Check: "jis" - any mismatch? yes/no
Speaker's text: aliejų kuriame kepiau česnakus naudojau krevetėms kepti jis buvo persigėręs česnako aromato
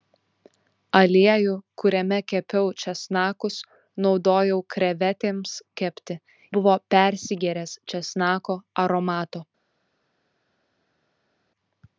yes